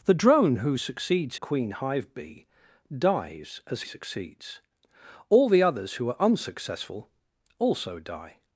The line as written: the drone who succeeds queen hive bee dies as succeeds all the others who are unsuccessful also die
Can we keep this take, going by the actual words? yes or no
yes